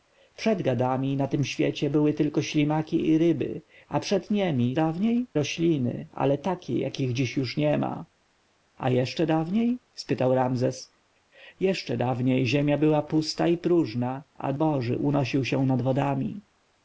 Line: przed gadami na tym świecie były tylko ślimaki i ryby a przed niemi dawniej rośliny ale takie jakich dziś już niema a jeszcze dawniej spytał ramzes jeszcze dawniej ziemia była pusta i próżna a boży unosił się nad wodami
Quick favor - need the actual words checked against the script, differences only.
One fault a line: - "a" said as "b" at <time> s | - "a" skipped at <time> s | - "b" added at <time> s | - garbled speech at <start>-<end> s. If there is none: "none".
none